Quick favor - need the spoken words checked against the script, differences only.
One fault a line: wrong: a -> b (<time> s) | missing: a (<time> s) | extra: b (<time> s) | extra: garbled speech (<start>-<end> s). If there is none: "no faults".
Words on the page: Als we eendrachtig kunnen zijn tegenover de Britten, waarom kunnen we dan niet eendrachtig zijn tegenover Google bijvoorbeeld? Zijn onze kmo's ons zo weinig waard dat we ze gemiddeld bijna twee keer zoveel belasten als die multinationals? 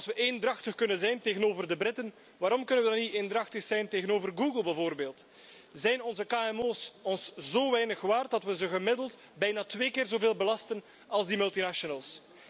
no faults